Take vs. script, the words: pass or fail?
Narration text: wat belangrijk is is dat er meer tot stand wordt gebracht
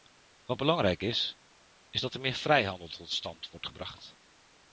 fail